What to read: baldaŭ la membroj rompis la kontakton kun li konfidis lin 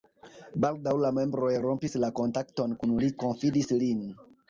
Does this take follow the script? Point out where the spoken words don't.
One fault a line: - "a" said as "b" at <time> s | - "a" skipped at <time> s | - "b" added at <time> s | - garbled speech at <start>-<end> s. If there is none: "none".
none